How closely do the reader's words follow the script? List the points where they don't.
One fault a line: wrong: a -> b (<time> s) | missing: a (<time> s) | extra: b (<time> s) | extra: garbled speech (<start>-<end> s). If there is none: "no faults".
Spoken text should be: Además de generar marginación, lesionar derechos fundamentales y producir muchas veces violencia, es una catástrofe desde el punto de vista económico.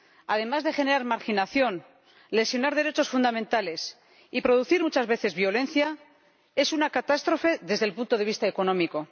no faults